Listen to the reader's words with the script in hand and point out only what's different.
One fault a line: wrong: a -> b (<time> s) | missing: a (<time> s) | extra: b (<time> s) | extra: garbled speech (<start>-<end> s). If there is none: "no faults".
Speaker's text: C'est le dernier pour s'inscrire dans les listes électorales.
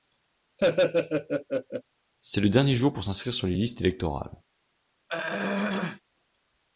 extra: jour (2.8 s)
wrong: dans -> sur (3.3 s)